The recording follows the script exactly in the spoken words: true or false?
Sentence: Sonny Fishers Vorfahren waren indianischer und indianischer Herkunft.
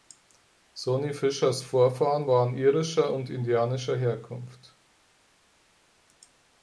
false